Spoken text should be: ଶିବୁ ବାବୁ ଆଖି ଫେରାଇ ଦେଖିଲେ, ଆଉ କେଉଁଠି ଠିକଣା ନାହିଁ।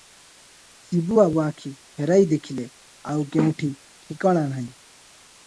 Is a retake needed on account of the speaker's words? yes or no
no